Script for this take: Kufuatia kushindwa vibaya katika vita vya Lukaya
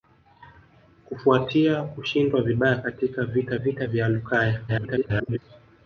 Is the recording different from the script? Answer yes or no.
yes